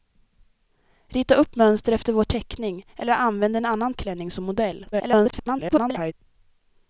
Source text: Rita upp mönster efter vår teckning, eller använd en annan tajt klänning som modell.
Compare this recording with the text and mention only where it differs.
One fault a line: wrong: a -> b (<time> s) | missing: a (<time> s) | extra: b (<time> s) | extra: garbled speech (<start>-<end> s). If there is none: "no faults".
missing: tajt (3.9 s)
extra: garbled speech (4.9-6.1 s)